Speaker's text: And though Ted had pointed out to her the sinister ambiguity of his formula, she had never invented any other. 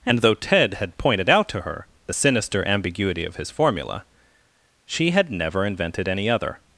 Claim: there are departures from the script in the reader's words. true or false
false